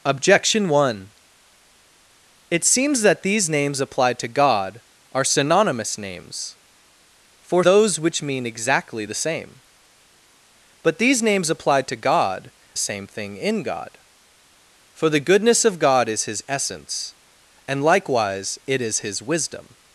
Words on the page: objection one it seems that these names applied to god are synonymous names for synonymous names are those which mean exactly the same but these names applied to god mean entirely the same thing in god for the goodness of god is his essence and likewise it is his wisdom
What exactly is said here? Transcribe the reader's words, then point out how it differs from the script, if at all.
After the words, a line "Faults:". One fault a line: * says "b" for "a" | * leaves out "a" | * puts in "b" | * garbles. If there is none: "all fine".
objection one it seems that these names applied to god are synonymous names for those which mean exactly the same but these names applied to god same thing in god for the goodness of god is his essence and likewise it is his wisdom
Faults:
* leaves out "synonymous names are"
* leaves out "mean entirely the"